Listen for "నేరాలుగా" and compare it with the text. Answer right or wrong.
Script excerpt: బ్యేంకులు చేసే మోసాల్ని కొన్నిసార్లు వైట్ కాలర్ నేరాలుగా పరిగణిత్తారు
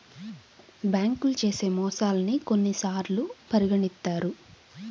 wrong